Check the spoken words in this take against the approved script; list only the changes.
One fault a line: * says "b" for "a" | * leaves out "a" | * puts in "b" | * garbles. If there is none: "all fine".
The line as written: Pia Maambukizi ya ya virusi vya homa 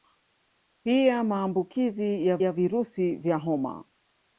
all fine